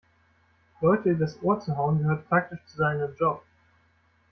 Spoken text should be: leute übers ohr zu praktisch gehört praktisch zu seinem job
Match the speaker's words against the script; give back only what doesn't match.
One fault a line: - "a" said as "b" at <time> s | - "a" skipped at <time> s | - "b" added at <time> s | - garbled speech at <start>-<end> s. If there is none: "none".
- "praktisch" said as "hauen" at 1.8 s